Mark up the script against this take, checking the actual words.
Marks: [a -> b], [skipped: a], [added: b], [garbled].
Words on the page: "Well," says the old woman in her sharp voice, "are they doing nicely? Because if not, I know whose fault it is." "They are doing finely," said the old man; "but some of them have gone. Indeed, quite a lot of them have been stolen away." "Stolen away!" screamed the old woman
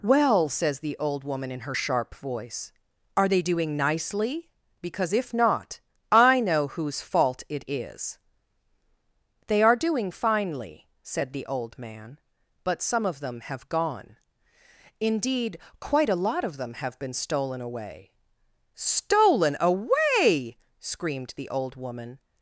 "Well," says the old woman in her sharp voice, "are they doing nicely? Because if not, I know whose fault it is." "They are doing finely," said the old man; "but some of them have gone. Indeed, quite a lot of them have been stolen away." "Stolen away!" screamed the old woman